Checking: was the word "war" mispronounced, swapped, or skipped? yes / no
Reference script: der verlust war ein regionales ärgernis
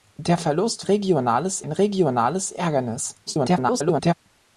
yes